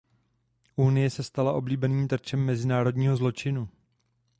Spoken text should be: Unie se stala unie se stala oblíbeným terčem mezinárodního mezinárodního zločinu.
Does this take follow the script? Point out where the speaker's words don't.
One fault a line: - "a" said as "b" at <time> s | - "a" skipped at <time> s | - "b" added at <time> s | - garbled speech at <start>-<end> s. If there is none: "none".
- "unie se stala" skipped at 1.5 s
- "mezinárodního" skipped at 3.2 s